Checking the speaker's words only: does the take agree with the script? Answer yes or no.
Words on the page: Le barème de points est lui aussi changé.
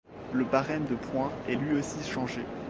yes